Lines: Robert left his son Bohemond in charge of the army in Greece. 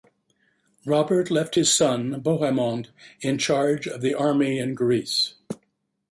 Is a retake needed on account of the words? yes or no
no